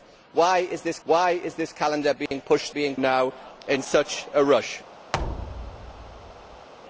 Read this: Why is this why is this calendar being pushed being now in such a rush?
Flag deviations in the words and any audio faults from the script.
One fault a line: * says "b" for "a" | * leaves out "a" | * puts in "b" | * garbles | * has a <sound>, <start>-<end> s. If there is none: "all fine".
* has a dropout, 2.3-2.3 s
* has a thud, 5.1-6.7 s